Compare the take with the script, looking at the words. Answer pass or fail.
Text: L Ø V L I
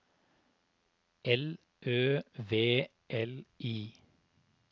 pass